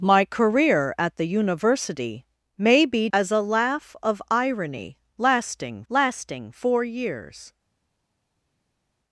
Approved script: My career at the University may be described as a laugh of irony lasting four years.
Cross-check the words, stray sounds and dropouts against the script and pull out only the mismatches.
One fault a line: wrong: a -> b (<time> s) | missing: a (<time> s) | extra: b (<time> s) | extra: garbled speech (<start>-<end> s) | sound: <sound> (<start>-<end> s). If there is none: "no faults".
missing: described (3.1 s)
extra: lasting (5.9 s)